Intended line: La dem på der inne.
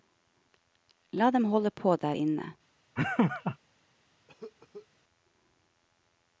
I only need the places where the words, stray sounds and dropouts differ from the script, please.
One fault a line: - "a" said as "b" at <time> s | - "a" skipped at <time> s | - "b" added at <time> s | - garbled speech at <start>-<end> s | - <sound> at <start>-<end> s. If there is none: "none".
- "holde" added at 1.5 s
- laugh at 3.0-3.6 s
- cough at 4.3-4.9 s